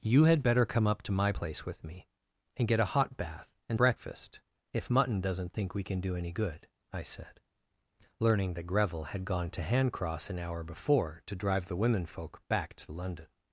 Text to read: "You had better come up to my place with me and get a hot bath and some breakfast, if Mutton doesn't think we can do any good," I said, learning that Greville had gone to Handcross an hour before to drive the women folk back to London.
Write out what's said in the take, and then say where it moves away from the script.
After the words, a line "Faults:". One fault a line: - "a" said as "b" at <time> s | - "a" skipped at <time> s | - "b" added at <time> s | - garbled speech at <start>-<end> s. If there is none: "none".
"You had better come up to my place with me and get a hot bath and breakfast, if Mutton doesn't think we can do any good," I said, learning that Greville had gone to Handcross an hour before to drive the women folk back to London.
Faults:
- "some" skipped at 3.8 s